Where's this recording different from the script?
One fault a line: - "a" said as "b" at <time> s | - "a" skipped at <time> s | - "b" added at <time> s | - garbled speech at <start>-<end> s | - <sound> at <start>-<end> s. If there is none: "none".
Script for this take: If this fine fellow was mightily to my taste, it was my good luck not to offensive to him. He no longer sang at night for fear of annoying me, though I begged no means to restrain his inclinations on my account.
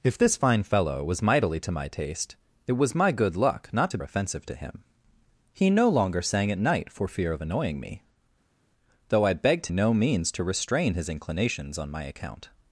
none